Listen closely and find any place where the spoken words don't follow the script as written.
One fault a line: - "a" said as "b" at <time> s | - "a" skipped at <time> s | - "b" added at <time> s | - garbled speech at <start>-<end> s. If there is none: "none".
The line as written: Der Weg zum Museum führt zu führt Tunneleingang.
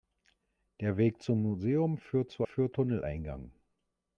none